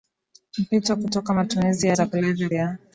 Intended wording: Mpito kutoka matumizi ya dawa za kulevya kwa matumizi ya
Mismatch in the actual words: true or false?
true